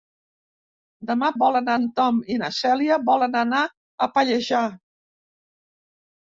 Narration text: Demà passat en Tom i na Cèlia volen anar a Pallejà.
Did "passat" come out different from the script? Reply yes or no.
yes